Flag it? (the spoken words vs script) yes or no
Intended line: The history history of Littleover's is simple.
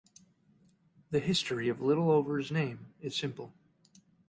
yes